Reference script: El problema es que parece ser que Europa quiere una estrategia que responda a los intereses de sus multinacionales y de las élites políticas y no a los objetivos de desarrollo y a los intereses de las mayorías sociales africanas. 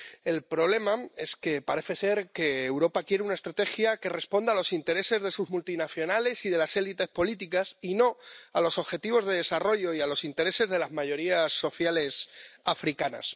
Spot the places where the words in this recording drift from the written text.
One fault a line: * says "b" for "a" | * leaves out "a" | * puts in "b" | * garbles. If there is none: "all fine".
all fine